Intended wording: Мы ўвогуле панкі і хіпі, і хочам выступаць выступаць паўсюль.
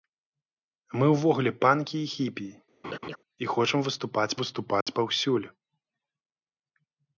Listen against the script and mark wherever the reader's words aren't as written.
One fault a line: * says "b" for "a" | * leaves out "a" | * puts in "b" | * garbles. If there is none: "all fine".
all fine